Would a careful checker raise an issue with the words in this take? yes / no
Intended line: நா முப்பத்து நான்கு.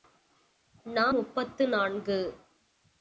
no